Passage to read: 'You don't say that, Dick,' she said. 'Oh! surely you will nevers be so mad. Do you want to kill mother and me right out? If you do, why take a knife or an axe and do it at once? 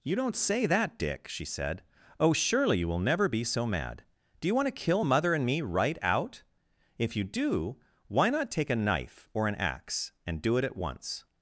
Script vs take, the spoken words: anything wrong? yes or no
yes